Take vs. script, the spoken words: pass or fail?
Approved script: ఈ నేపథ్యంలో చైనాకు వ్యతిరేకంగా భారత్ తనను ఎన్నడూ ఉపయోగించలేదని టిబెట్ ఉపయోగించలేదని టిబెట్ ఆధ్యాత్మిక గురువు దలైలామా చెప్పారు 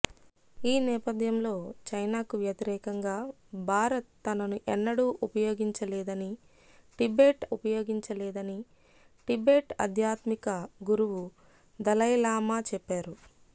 pass